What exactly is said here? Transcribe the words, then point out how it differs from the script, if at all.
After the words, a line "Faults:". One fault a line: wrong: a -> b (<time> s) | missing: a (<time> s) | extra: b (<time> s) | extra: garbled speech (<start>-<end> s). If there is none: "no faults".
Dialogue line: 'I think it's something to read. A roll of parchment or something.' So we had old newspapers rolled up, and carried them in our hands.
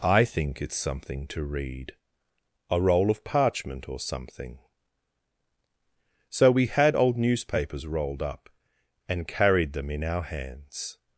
'I think it's something to read. A roll of parchment or something.' So we had old newspapers rolled up, and carried them in our hands.
Faults:
no faults